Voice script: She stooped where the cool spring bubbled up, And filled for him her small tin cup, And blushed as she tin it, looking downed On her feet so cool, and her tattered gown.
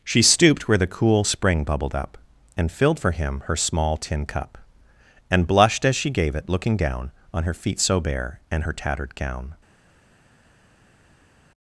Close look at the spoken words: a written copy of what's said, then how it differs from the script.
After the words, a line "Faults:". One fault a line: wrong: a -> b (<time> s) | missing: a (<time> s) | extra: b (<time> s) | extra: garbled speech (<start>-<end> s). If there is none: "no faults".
She stooped where the cool spring bubbled up, And filled for him her small tin cup, And blushed as she gave it, looking down On her feet so bare, and her tattered gown.
Faults:
wrong: tin -> gave (6.1 s)
wrong: downed -> down (6.8 s)
wrong: cool -> bare (8.0 s)